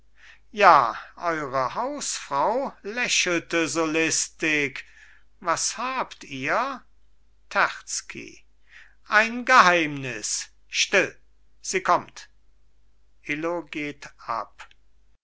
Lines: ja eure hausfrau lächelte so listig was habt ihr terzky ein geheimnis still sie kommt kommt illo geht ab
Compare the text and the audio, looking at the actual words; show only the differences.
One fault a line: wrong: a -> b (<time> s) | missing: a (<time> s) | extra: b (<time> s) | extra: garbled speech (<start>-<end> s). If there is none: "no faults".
missing: kommt (12.3 s)